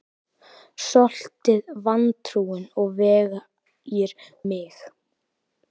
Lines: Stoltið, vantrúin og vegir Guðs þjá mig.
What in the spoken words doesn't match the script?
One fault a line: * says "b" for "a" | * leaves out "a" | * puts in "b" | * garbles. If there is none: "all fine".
* leaves out "Guðs þjá"